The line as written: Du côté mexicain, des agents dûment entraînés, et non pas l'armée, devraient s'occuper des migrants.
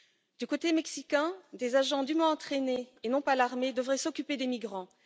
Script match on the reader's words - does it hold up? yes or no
yes